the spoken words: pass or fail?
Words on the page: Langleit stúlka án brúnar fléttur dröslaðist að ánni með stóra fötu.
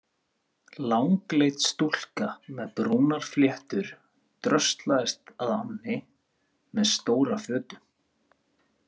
fail